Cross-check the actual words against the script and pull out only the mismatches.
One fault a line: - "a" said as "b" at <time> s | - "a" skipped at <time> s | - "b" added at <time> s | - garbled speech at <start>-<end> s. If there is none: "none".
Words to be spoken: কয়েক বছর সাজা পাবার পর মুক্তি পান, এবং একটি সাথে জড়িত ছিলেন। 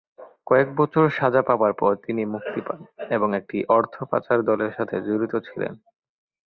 - "তিনি" added at 2.0 s
- "অর্থ পাচার দলের" added at 3.8 s